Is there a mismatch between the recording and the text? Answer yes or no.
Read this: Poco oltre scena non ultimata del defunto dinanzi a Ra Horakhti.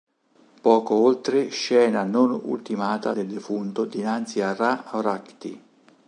no